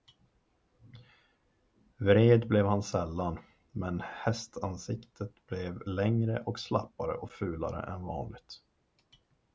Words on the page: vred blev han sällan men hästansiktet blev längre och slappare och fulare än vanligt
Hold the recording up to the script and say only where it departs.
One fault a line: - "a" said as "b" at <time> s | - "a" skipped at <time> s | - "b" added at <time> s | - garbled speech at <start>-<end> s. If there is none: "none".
none